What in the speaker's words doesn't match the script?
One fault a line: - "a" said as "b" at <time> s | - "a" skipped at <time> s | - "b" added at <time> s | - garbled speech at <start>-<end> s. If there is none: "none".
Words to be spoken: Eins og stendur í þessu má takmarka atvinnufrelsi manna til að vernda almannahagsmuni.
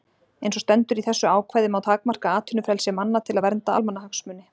- "ákvæði" added at 1.3 s